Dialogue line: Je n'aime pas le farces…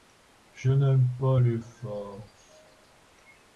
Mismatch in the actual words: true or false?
true